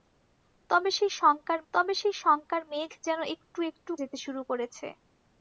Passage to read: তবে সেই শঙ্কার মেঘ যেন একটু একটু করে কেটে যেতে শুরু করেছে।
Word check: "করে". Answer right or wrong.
wrong